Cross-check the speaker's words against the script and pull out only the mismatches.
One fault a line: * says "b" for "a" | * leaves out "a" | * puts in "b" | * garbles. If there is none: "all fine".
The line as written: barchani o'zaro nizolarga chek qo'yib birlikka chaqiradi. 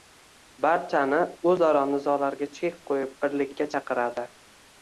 all fine